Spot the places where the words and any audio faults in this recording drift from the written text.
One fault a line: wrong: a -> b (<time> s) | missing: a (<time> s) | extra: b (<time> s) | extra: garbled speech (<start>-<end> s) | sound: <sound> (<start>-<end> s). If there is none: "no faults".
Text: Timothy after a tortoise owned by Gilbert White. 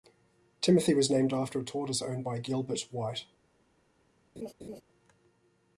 extra: was named (0.9 s)
sound: laugh (4.4-4.8 s)